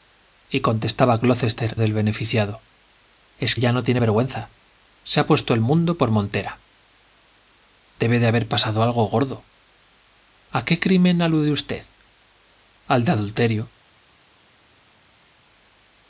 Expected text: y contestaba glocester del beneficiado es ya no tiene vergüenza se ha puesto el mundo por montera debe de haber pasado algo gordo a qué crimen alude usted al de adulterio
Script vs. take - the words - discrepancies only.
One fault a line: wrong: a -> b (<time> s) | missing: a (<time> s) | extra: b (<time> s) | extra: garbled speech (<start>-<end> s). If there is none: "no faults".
no faults